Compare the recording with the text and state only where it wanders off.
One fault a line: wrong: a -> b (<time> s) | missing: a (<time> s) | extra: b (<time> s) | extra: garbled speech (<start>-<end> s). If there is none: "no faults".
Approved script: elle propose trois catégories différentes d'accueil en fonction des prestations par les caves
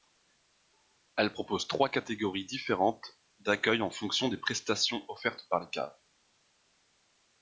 extra: offertes (5.1 s)